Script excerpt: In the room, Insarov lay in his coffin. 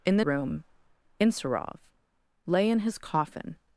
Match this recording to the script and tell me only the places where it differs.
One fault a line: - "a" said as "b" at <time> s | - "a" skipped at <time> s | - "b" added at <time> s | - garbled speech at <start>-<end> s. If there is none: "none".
none